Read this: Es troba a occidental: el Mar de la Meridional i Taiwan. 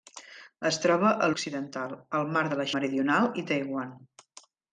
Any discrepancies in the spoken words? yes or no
no